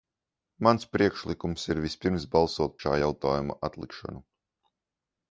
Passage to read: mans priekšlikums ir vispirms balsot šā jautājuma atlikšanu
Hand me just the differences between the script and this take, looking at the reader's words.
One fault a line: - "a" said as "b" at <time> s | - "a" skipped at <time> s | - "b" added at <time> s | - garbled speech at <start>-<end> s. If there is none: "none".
none